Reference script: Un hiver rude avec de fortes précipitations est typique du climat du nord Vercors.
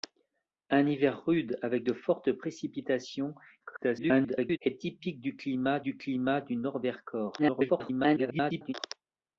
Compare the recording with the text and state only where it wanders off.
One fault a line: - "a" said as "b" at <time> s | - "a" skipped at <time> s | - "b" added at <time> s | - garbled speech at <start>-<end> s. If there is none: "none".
- garbled speech at 3.6-4.6 s
- "climat du" added at 6.0 s
- garbled speech at 7.4-8.7 s